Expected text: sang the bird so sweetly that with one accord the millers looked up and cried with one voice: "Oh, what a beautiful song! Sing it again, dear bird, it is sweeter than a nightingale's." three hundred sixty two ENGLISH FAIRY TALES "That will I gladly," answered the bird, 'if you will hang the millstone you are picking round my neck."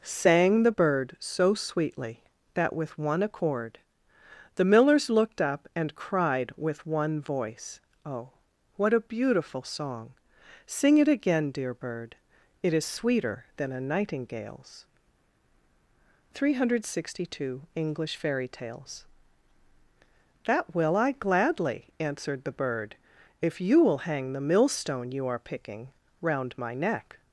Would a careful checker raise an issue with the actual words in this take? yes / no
no